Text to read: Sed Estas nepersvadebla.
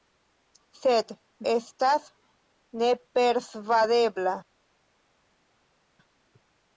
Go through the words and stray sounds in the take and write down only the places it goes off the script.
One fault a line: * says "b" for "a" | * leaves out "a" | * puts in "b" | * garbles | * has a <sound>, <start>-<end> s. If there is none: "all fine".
all fine